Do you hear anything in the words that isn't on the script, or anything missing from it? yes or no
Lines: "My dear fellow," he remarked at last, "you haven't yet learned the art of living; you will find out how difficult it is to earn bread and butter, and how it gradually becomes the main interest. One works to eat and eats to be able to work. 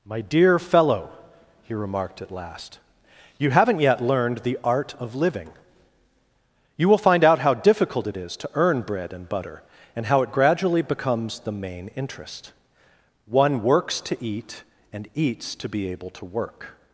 no